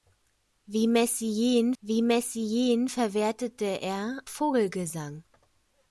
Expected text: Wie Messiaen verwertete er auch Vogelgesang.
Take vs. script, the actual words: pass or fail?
fail